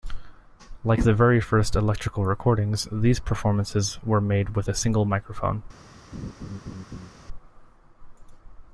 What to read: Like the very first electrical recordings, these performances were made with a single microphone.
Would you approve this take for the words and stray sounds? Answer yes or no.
no